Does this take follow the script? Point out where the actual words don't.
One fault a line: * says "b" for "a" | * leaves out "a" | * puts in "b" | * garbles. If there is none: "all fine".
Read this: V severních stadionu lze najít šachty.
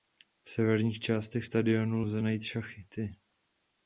* puts in "částech"